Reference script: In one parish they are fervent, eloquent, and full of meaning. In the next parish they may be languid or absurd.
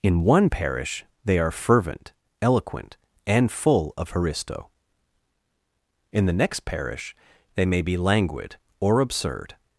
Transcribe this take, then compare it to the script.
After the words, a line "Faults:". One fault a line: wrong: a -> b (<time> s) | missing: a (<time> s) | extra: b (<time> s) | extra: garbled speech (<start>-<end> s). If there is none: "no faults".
In one parish they are fervent, eloquent, and full of haristo. In the next parish they may be languid or absurd.
Faults:
wrong: meaning -> haristo (4.1 s)